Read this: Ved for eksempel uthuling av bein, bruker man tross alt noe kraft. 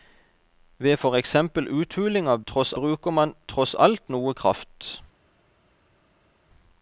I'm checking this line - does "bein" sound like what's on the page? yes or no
no